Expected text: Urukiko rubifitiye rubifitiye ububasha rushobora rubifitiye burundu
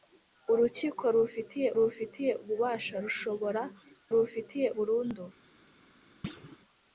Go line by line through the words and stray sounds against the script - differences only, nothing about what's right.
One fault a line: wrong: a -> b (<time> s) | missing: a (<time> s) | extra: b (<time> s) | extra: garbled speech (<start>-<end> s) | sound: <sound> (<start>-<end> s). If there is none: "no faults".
sound: thud (6.2-6.6 s)